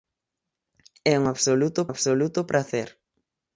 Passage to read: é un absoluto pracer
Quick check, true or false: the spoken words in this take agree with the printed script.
false